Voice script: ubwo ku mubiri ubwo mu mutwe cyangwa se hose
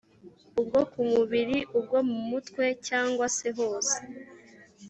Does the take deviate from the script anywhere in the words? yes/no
no